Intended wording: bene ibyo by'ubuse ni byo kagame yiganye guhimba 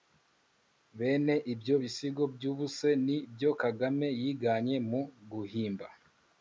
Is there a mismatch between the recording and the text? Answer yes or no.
yes